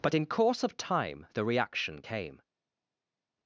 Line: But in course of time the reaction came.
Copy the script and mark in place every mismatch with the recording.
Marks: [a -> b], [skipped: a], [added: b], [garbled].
But in course of time the reaction came.